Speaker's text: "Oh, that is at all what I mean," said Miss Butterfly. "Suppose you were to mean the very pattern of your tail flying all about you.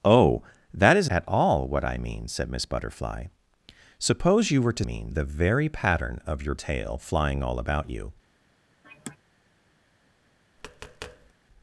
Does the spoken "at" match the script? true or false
true